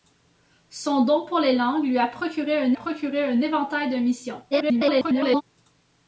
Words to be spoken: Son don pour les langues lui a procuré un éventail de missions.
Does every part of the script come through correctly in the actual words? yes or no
no